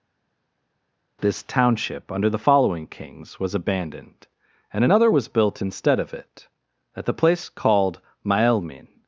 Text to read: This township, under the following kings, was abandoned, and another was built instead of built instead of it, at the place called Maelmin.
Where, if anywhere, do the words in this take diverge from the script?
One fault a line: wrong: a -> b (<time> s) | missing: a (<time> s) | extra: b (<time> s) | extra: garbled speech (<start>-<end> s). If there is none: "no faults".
missing: built instead of (6.1 s)